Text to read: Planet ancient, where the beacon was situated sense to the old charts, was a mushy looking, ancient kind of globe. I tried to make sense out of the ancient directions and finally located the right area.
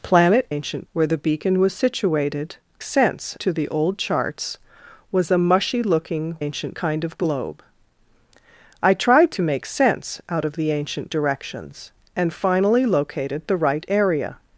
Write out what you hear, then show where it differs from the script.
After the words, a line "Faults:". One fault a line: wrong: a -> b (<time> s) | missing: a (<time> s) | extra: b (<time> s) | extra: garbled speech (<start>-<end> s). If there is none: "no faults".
Planet ancient, where the beacon was situated sense to the old charts, was a mushy looking, ancient kind of globe. I tried to make sense out of the ancient directions and finally located the right area.
Faults:
no faults